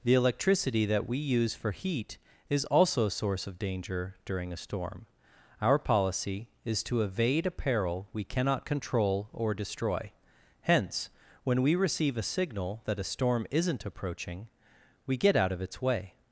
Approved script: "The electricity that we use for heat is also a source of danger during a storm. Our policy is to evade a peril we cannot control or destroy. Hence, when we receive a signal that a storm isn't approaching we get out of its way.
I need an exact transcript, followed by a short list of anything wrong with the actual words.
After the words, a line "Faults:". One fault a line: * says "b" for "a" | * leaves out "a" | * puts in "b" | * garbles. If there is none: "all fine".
"The electricity that we use for heat is also a source of danger during a storm. Our policy is to evade a peril we cannot control or destroy. Hence, when we receive a signal that a storm isn't approaching we get out of its way.
Faults:
all fine